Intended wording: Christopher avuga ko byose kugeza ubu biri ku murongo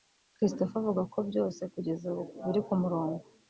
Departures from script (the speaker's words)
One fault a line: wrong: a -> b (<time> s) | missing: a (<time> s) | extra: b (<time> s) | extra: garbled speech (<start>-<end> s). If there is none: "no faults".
no faults